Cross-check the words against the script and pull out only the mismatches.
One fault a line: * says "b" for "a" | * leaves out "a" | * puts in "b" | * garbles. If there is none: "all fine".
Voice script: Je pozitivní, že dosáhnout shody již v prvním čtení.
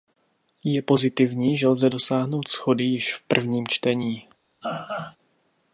* puts in "lze"